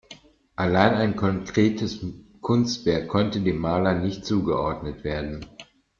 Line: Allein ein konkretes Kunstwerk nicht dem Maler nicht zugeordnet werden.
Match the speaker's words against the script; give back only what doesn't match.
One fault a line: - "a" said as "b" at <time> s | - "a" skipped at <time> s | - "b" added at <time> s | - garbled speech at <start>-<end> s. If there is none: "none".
- "nicht" said as "konnte" at 3.1 s